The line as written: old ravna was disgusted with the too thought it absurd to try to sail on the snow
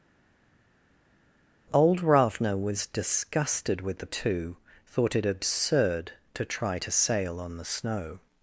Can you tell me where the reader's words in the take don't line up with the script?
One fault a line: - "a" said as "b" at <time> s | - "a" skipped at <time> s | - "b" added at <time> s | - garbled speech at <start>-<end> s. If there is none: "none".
none